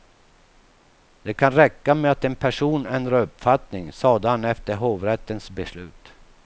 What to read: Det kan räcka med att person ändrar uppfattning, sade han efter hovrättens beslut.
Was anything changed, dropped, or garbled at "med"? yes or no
no